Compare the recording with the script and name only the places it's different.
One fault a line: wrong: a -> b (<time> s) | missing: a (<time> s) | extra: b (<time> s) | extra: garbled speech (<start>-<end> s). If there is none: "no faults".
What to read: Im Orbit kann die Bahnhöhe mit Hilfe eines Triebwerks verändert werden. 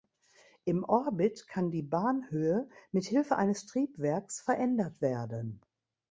no faults